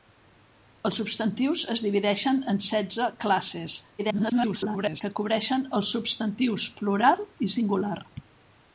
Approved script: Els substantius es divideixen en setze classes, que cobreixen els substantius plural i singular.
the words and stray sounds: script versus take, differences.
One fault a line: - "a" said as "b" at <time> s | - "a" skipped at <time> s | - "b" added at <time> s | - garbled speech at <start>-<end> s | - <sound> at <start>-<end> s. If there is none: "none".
- garbled speech at 4.0-5.0 s